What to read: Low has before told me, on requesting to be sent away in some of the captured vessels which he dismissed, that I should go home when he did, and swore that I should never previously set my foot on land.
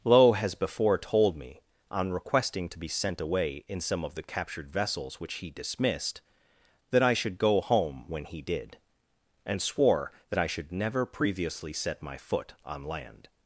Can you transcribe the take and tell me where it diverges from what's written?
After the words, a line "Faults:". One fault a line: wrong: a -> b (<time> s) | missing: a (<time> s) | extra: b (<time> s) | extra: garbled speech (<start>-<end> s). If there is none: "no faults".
Low has before told me, on requesting to be sent away in some of the captured vessels which he dismissed, that I should go home when he did, and swore that I should never previously set my foot on land.
Faults:
no faults